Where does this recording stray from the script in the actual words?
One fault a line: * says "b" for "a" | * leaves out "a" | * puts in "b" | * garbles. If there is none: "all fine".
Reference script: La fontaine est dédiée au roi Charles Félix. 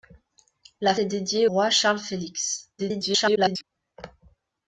* leaves out "fontaine"
* leaves out "au"
* garbles